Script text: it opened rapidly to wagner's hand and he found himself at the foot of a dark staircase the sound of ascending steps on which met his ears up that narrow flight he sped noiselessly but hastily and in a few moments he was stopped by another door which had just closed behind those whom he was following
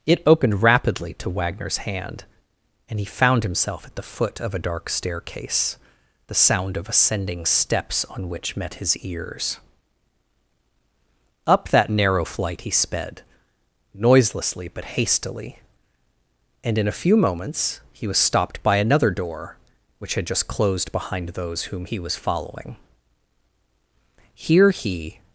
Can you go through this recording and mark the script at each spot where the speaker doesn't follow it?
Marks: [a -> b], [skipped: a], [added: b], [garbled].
it opened rapidly to wagner's hand and he found himself at the foot of a dark staircase the sound of ascending steps on which met his ears up that narrow flight he sped noiselessly but hastily and in a few moments he was stopped by another door which had just closed behind those whom he was following [added: here he]